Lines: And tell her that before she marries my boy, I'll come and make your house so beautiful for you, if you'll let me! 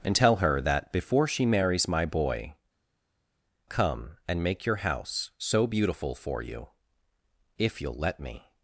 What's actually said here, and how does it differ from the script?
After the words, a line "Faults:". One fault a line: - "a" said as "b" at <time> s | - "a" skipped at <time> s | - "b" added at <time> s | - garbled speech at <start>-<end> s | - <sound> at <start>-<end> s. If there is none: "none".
And tell her that before she marries my boy, Come and make your house so beautiful for you, if you'll let me!
Faults:
- "I'll" skipped at 2.5 s